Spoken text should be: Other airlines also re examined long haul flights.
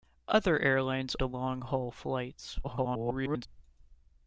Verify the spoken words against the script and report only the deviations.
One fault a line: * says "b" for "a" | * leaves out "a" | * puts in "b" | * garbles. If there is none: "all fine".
* leaves out "also re examined"
* garbles